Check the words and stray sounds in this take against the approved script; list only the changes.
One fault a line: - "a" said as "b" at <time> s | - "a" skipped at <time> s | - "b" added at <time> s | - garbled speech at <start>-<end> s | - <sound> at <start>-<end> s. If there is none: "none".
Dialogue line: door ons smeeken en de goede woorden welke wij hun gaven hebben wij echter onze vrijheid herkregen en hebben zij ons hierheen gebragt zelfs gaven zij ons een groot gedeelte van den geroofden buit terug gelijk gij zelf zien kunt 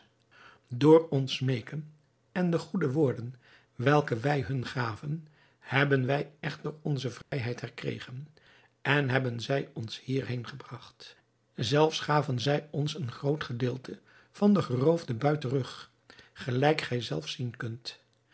- dropout at 7.2-7.3 s